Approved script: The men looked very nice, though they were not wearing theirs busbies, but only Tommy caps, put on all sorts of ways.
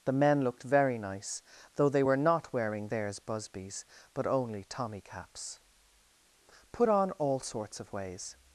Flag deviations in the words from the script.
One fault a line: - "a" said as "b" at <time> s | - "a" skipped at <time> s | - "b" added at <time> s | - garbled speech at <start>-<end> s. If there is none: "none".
none